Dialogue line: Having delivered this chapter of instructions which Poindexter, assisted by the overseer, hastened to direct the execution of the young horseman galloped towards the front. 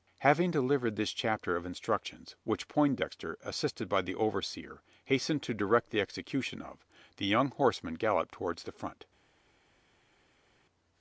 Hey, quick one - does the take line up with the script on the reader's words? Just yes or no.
yes